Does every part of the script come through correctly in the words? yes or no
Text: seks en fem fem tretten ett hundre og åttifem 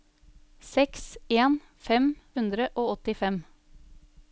no